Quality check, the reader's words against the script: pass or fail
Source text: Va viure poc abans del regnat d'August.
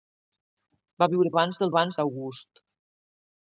fail